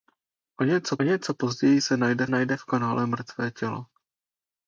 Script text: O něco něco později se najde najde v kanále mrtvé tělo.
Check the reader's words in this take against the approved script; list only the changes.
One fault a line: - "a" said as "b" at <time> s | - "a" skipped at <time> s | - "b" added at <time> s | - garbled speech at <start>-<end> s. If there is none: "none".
none